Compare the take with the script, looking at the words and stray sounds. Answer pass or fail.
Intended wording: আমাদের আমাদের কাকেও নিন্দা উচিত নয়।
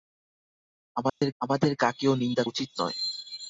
fail